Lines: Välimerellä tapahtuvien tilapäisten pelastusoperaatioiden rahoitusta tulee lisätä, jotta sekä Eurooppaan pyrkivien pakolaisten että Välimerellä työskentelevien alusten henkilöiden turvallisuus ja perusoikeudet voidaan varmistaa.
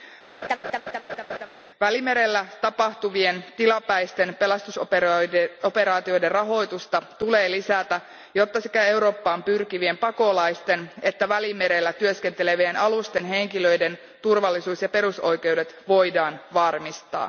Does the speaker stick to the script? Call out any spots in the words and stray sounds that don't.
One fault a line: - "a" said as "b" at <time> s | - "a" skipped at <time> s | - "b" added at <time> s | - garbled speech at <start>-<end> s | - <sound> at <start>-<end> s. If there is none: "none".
- laugh at 0.4-1.5 s